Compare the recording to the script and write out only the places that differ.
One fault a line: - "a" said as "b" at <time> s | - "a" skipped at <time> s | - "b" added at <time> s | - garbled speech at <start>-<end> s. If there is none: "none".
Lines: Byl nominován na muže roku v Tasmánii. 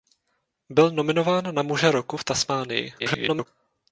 - garbled speech at 3.0-3.5 s